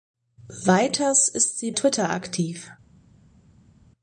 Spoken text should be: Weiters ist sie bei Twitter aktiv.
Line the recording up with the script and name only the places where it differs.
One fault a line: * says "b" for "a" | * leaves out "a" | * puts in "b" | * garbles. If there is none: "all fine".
* leaves out "bei"